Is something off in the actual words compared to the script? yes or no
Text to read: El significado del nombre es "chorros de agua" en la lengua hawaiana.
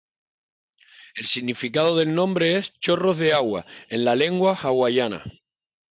no